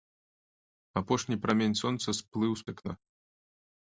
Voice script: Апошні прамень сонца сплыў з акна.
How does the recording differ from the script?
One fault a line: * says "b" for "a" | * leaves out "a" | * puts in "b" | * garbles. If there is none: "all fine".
all fine